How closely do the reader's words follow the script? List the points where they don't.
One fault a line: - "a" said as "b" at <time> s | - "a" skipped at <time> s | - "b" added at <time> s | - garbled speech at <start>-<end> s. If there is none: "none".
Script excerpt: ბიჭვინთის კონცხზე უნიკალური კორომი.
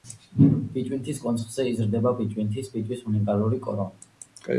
- "იზრდება ბიჭვინთის ფიჭვის" added at 1.7 s